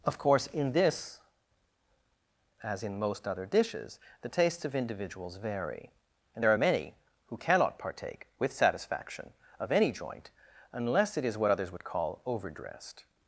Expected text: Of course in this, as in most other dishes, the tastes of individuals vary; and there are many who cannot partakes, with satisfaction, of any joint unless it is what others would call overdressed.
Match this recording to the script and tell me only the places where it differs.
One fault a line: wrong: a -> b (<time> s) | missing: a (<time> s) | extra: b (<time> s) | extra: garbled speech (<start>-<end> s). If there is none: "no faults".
wrong: partakes -> partake (7.8 s)